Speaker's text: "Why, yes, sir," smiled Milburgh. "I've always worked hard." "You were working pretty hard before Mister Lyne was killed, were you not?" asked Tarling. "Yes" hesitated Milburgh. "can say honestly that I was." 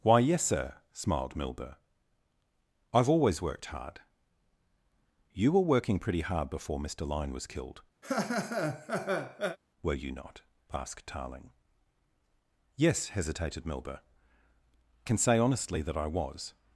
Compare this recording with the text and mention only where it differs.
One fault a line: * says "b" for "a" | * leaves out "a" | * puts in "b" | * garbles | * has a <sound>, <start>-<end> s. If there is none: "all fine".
* has a laugh, 8.0-9.6 s